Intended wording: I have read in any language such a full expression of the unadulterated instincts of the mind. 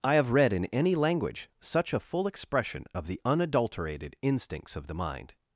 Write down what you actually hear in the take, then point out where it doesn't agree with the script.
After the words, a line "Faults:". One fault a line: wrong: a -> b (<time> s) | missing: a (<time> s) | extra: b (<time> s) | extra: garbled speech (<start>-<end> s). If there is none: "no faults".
I have read in any language such a full expression of the unadulterated instincts of the mind.
Faults:
no faults